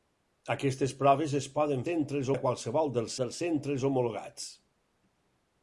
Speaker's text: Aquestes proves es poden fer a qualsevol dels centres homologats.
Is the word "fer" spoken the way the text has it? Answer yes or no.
no